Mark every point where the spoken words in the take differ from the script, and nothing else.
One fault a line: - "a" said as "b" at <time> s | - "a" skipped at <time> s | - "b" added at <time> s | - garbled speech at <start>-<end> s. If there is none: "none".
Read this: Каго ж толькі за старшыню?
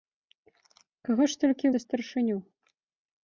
none